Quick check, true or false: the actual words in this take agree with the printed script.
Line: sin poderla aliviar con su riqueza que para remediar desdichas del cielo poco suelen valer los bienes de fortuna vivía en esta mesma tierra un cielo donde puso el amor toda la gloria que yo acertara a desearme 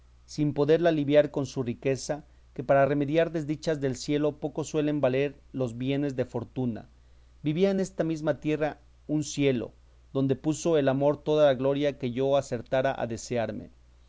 true